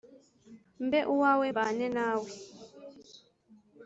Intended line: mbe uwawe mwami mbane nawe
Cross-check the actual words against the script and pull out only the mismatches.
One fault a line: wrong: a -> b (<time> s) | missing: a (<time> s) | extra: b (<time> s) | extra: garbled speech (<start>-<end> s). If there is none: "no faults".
missing: mwami (1.5 s)